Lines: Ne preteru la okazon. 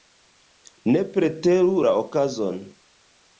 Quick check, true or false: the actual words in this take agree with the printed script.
true